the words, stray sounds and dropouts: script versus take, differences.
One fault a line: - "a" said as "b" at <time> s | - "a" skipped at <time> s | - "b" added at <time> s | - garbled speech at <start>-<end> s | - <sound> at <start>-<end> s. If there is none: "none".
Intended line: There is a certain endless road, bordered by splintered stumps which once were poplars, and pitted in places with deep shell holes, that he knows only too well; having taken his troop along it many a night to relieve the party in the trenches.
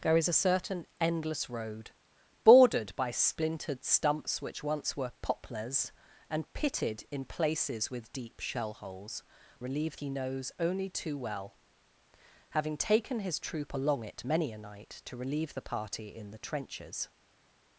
- "that" said as "relieve" at 9.6 s